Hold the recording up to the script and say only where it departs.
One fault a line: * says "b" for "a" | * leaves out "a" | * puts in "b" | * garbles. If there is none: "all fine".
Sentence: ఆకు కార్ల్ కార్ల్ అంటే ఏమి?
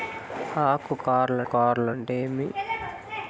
all fine